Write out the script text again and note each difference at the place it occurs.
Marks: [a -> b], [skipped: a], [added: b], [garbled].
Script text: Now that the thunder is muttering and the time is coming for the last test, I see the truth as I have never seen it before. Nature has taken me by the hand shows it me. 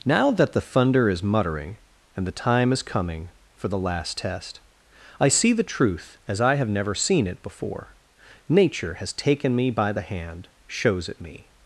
Now that the thunder is muttering and the time is coming for the last test, I see the truth as I have never seen it before. Nature has taken me by the hand shows it me.